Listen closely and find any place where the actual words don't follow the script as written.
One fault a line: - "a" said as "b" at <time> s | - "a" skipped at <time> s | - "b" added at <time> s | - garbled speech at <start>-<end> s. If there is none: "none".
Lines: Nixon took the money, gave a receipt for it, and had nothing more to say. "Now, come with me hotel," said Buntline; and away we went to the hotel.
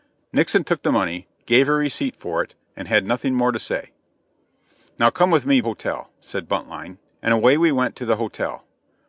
none